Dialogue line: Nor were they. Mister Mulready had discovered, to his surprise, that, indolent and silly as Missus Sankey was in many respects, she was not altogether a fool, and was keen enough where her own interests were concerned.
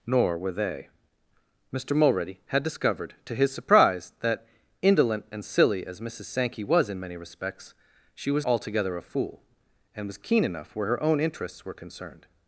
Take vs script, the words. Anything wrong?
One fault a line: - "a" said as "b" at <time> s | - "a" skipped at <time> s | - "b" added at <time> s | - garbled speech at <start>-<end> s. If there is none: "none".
- "not" skipped at 8.5 s